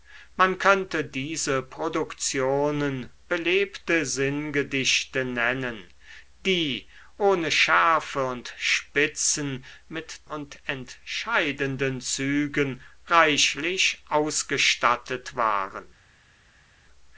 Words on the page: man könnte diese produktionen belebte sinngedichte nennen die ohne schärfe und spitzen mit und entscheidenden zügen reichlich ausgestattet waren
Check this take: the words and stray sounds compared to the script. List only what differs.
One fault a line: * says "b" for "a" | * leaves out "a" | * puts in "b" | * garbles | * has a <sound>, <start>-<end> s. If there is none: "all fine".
all fine